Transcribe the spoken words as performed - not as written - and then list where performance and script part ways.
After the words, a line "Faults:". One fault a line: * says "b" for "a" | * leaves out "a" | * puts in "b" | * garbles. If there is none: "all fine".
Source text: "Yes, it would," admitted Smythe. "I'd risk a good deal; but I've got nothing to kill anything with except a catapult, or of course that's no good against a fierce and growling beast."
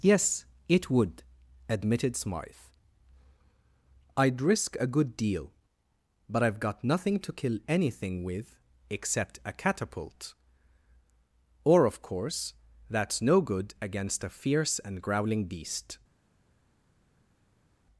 "Yes, it would," admitted Smythe. "I'd risk a good deal; but I've got nothing to kill anything with except a catapult, or of course that's no good against a fierce and growling beast."
Faults:
all fine